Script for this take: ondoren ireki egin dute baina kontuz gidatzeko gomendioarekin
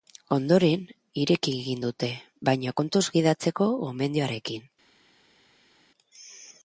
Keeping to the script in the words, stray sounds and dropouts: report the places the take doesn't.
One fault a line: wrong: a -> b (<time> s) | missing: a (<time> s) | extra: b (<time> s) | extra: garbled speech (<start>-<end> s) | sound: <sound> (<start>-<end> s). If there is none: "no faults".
no faults